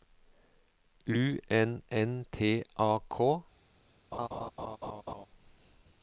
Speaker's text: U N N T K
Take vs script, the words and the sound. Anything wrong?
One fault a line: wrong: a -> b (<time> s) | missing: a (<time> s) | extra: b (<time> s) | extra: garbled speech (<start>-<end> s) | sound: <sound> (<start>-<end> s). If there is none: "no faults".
extra: A (2.8 s)
sound: laugh (4.1-5.3 s)